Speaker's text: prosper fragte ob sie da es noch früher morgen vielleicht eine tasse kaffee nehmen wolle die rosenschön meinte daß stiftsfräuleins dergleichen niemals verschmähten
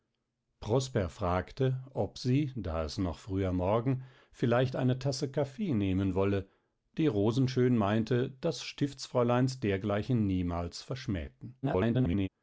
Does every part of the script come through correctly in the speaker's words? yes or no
no